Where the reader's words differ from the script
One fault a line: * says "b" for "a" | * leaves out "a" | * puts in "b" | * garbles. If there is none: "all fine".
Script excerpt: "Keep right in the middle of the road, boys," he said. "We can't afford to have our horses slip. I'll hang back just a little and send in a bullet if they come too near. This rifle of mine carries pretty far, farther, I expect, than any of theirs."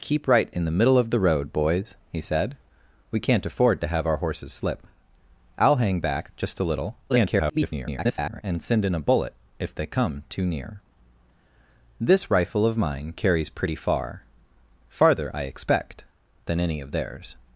* garbles